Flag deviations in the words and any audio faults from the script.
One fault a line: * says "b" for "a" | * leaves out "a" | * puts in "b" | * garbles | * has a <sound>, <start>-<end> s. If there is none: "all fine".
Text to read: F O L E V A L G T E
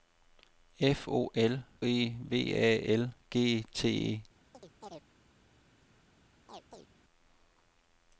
* has a chirp, 4.5-5.1 s
* has a chirp, 6.5-6.9 s